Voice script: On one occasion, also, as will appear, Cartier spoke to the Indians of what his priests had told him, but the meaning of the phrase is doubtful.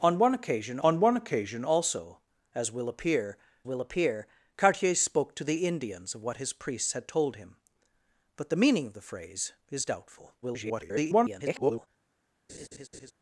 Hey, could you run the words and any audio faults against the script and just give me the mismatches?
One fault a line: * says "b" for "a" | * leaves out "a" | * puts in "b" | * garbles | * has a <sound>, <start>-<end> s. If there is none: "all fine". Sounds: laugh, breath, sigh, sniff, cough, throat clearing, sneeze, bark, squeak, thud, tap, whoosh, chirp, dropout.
* puts in "on one occasion"
* puts in "will appear"
* garbles
* has a laugh, 12.5-13.1 s